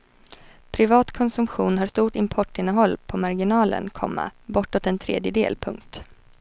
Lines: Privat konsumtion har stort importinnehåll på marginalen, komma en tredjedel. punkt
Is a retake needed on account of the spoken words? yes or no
yes